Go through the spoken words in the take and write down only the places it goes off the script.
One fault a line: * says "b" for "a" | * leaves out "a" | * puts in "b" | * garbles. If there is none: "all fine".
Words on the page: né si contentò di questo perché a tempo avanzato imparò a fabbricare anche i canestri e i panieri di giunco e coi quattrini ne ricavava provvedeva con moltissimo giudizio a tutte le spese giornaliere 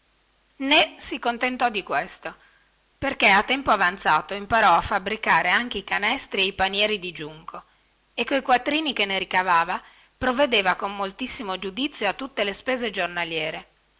* puts in "che"